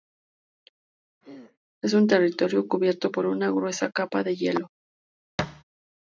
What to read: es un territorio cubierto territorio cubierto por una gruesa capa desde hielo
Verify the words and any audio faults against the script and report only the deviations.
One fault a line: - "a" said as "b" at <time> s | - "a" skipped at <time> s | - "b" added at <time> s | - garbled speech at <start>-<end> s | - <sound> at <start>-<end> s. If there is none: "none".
- throat clearing at 1.2-1.6 s
- "territorio cubierto" skipped at 3.1 s
- "desde" said as "de" at 4.2 s
- thud at 5.4-5.6 s